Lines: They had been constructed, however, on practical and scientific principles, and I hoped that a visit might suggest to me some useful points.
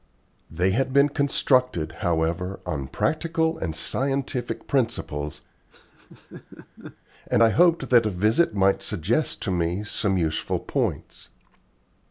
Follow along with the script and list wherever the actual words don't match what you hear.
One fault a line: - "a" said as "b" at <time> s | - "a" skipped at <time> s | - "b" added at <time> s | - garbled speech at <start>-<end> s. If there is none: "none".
none